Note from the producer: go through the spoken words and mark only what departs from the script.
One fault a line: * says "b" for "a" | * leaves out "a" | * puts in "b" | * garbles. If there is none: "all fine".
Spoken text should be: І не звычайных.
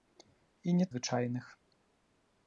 all fine